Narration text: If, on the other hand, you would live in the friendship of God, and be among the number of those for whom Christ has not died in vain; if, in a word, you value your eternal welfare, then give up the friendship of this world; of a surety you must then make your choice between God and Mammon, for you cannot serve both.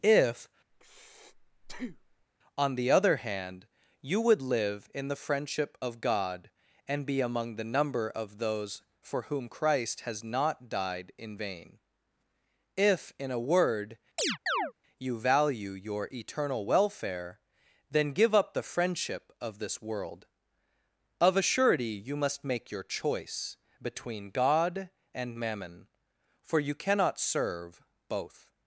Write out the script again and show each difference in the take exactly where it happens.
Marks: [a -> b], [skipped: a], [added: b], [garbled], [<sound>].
If, [breath] on the other hand, you would live in the friendship of God, and be among the number of those for whom Christ has not died in vain; if, in a word, [chirp] you value your eternal welfare, then give up the friendship of this world; of a surety you must [skipped: then] make your choice between God and Mammon, for you cannot serve both.